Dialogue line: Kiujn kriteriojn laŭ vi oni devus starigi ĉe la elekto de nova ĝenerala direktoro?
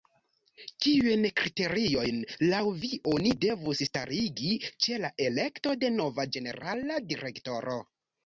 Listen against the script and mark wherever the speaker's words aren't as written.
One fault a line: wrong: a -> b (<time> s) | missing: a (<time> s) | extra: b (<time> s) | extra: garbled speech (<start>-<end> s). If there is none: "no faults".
no faults